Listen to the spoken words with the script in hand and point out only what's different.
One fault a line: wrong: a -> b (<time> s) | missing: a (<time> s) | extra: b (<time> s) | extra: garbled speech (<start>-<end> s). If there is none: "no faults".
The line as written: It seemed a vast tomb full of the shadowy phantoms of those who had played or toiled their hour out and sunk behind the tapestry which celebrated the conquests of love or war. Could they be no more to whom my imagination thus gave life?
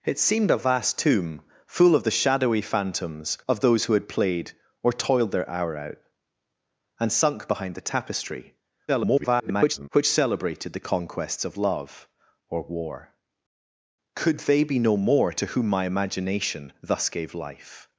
extra: garbled speech (8.9-9.9 s)